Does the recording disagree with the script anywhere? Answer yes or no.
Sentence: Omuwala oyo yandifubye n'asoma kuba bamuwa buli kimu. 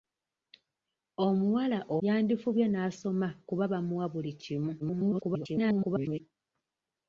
yes